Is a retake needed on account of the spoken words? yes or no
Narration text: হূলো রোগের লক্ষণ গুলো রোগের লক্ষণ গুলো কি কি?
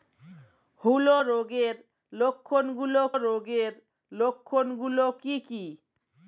no